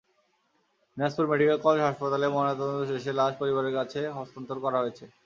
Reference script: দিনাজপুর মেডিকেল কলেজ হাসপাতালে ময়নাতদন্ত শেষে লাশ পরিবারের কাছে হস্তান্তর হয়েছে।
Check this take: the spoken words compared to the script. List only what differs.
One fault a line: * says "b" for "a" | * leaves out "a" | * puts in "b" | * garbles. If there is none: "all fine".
* puts in "করা"